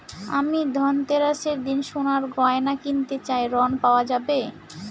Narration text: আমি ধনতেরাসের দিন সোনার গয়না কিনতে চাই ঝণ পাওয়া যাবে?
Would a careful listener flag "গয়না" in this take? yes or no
no